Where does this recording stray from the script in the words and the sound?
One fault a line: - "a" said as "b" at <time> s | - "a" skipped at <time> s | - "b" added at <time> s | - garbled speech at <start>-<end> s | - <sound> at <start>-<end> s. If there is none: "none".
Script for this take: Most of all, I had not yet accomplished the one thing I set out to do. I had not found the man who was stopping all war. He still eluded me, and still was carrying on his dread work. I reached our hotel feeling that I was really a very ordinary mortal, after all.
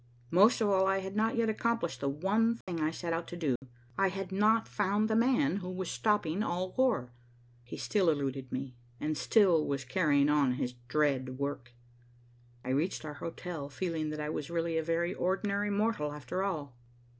- dropout at 2.6-2.7 s
- dropout at 3.6-3.6 s